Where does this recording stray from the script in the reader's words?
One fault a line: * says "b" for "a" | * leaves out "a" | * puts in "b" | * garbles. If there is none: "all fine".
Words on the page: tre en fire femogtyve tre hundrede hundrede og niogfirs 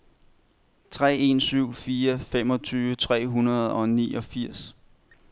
* puts in "syv"
* leaves out "hundrede"